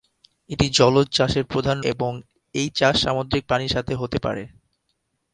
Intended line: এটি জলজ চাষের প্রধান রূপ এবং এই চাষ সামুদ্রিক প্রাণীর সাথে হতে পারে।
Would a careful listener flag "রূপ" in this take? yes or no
yes